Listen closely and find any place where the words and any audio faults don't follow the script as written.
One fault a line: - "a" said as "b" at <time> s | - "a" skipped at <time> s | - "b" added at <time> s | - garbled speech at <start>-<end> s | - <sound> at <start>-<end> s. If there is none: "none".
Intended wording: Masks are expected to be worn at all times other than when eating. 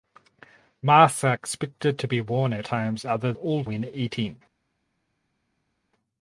- "all" skipped at 2.7 s
- "than" said as "all" at 3.3 s